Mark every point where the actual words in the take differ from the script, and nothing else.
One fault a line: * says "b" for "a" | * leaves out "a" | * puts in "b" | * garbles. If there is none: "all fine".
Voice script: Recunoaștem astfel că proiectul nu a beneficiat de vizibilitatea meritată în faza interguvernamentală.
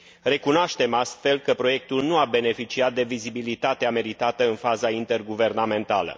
all fine